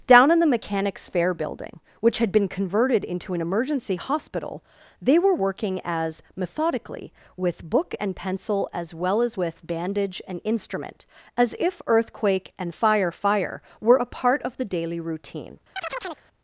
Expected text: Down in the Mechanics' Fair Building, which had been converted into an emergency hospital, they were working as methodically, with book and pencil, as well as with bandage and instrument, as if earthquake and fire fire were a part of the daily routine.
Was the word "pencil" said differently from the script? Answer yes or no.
no